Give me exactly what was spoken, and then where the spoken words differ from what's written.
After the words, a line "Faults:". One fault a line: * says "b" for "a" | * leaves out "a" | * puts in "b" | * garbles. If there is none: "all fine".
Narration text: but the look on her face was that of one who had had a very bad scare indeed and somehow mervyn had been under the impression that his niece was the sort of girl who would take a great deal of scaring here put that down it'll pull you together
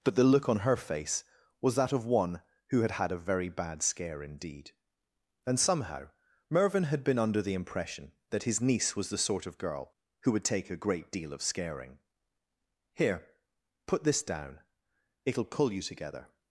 but the look on her face was that of one who had had a very bad scare indeed and somehow mervyn had been under the impression that his niece was the sort of girl who would take a great deal of scaring here put this down it'll pull you together
Faults:
* says "this" for "that"